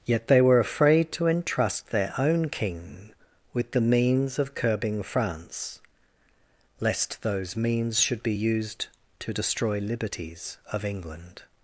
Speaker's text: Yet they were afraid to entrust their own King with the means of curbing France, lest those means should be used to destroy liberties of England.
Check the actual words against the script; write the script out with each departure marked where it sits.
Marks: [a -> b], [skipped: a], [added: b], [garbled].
Yet they were afraid to entrust their own King with the means of curbing France, lest those means should be used to destroy liberties of England.